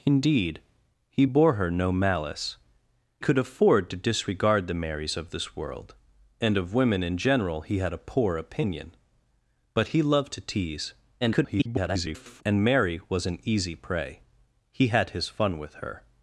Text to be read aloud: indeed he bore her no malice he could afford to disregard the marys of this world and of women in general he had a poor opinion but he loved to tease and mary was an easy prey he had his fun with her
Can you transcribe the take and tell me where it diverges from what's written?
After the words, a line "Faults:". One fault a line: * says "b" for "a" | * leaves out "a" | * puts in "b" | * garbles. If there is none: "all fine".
indeed he bore her no malice could afford to disregard the marys of this world and of women in general he had a poor opinion but he loved to tease [garbled] and mary was an easy prey he had his fun with her
Faults:
* leaves out "he"
* garbles